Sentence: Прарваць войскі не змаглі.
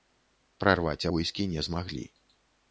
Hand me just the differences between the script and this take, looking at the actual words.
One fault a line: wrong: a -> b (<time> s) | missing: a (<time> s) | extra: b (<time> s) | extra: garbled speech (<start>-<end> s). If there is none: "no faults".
no faults